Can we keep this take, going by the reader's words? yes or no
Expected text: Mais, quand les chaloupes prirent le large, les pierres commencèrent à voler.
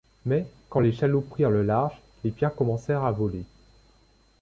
yes